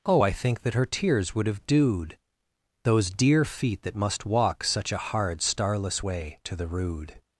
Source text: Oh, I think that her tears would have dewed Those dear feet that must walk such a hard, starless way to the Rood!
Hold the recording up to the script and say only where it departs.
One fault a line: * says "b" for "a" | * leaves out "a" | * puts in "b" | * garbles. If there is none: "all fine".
all fine